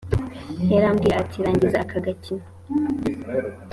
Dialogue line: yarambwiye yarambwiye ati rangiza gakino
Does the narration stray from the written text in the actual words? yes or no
yes